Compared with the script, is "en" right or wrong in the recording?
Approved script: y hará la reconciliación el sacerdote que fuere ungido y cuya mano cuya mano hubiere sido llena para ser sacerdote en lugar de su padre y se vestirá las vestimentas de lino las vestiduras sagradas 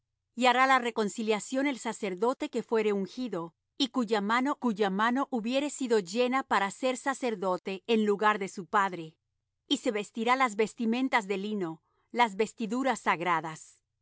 right